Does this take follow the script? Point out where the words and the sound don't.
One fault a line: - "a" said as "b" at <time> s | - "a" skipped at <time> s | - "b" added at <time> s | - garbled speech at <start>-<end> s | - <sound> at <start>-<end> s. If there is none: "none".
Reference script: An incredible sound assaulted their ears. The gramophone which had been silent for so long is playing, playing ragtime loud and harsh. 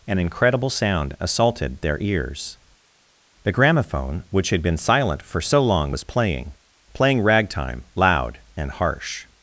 - "is" said as "was" at 5.9 s